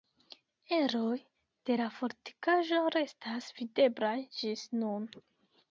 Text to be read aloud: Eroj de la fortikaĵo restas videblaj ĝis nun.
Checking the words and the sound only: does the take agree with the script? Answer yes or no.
yes